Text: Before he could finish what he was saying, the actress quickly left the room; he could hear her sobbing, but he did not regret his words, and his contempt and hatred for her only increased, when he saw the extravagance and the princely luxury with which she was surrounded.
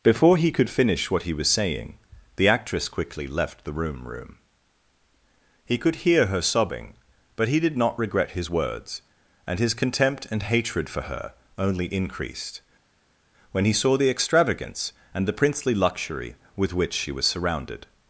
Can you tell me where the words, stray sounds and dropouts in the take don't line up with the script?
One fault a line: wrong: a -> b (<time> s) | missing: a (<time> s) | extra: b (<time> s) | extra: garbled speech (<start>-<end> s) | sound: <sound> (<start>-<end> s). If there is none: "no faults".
extra: room (4.1 s)